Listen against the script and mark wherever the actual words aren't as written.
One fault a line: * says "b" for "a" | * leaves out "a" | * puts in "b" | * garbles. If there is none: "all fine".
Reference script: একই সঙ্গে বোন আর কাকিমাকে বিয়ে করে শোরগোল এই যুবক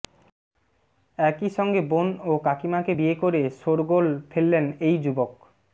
* says "ও" for "আর"
* puts in "ফেললেন"